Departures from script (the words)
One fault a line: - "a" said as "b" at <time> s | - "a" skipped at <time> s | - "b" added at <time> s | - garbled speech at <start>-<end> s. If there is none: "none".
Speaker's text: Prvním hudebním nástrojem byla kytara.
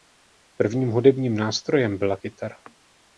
none